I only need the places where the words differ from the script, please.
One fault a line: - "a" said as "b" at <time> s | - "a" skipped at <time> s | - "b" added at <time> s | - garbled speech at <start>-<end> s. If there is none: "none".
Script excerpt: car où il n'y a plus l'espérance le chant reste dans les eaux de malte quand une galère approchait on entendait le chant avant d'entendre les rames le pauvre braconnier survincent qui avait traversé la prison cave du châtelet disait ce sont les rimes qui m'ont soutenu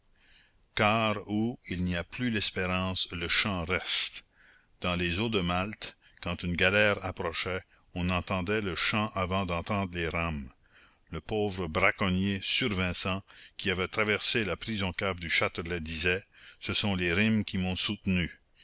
none